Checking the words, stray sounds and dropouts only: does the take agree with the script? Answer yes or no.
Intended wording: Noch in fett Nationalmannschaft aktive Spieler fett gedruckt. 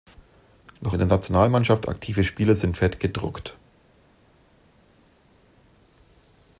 no